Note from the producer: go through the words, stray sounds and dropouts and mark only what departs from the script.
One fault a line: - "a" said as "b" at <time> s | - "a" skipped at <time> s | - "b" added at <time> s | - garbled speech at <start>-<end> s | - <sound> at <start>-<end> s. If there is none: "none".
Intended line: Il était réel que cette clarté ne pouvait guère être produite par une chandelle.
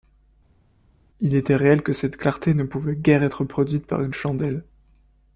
none